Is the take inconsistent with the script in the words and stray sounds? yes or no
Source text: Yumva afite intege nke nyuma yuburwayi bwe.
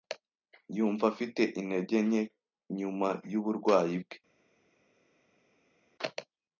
no